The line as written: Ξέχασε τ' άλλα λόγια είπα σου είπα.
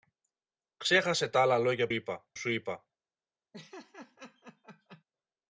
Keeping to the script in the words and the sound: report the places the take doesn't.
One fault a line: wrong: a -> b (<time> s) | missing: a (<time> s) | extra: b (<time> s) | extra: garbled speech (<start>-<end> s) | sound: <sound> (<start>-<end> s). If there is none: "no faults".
sound: laugh (3.5-5.0 s)